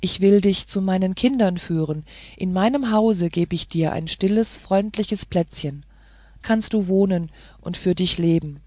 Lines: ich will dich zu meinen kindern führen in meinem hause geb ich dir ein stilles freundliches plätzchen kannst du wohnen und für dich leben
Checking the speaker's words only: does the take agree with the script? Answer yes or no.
yes